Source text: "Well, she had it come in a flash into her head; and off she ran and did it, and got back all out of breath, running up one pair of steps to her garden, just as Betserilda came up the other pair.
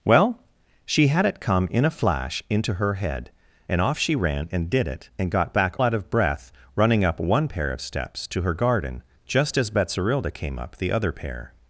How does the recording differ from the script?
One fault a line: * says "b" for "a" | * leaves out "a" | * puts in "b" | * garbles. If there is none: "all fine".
* leaves out "all"